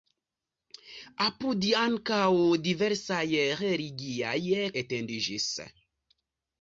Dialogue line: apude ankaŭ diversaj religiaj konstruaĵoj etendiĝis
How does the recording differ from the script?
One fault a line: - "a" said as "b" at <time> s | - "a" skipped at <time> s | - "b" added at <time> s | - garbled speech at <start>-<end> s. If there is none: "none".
- "konstruaĵoj" skipped at 4.4 s